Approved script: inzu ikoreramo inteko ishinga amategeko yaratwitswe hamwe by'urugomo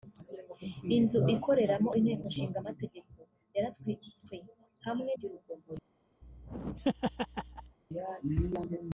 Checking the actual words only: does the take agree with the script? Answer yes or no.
yes